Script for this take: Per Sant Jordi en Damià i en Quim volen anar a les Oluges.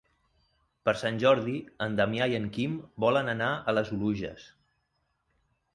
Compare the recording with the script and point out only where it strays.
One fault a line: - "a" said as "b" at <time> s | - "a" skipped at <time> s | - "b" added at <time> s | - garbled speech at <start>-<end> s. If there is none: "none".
none